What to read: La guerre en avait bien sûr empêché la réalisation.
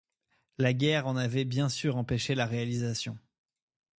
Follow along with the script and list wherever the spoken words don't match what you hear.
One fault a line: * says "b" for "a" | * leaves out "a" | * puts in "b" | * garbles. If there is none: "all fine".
all fine